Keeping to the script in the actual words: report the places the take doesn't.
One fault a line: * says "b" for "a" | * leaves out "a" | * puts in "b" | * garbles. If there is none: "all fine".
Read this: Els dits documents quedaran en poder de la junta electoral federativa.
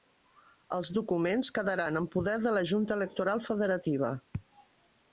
* leaves out "dits"